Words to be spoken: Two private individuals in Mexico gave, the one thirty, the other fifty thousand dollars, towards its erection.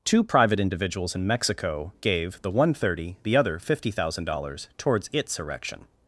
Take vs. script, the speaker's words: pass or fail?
pass